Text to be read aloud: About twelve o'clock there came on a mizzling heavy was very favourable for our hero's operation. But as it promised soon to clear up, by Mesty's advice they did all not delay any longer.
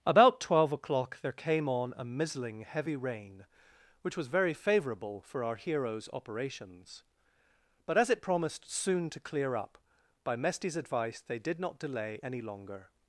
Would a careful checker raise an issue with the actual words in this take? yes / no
yes